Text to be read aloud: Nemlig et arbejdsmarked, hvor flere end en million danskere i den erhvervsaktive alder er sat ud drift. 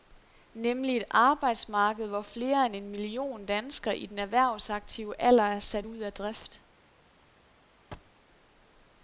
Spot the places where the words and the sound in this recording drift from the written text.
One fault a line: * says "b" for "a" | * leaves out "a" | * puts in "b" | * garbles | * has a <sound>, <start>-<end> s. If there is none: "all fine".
* puts in "af"
* has a thud, 7.9-8.2 s